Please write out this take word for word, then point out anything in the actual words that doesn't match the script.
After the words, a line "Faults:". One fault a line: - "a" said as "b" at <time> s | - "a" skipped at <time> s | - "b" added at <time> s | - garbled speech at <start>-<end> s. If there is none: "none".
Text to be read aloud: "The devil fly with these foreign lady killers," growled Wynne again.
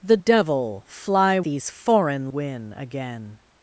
"The devil fly these foreign Wynne again.
Faults:
- "with" skipped at 1.4 s
- "lady killers growled" skipped at 2.3 s